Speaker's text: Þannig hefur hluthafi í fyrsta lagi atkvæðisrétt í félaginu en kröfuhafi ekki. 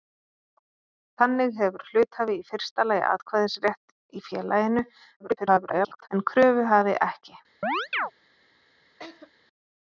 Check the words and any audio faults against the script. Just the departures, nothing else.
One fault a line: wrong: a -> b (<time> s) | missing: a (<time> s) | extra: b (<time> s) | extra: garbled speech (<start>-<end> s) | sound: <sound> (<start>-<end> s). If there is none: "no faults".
extra: garbled speech (5.2-6.1 s)
sound: chirp (7.6-8.1 s)
sound: laugh (9.0-9.3 s)